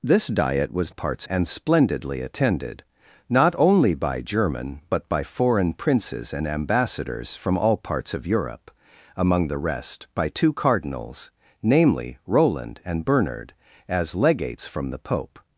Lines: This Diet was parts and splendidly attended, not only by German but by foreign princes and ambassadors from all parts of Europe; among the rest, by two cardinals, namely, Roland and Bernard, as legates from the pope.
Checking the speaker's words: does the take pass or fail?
pass